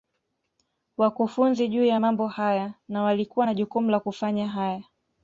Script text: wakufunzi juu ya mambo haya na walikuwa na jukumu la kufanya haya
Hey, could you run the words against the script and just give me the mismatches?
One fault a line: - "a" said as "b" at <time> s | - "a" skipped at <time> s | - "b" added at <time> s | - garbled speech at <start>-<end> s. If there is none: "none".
none